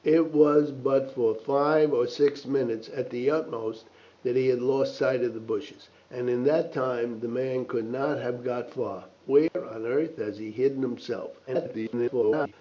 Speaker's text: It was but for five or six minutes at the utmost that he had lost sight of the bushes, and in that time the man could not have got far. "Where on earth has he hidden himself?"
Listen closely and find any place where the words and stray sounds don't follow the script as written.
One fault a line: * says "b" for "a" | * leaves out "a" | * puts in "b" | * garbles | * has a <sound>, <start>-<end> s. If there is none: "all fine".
* has a dropout, 9.5-9.5 s
* garbles